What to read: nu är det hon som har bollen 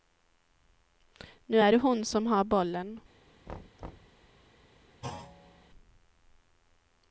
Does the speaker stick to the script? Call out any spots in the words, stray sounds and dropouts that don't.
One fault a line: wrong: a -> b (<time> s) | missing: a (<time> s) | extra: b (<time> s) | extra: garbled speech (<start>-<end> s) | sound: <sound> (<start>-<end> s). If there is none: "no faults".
sound: thud (3.5-4.2 s)
sound: thud (5.0-5.7 s)